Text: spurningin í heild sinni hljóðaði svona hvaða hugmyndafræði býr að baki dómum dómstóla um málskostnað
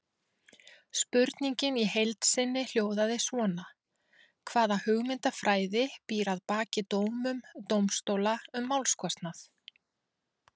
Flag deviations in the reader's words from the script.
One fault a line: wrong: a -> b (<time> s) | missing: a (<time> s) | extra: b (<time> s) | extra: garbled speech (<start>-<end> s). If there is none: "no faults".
no faults